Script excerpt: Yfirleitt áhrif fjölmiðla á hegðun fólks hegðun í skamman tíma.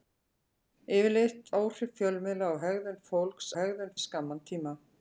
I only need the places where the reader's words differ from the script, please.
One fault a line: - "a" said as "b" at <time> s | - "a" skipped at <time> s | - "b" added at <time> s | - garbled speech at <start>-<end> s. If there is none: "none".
none